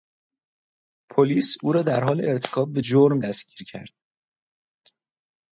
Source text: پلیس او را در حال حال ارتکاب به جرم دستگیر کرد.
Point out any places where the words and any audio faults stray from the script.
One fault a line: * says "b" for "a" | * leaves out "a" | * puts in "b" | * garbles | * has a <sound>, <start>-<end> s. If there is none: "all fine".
* leaves out "حال"